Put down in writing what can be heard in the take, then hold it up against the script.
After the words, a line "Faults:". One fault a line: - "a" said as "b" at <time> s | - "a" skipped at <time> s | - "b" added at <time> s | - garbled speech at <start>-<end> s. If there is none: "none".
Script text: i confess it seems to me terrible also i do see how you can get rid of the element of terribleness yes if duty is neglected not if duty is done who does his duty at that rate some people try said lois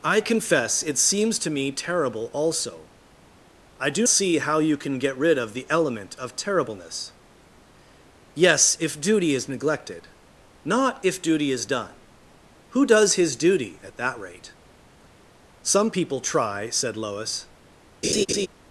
i confess it seems to me terrible also i do see how you can get rid of the element of terribleness yes if duty is neglected not if duty is done who does his duty at that rate some people try said lois
Faults:
none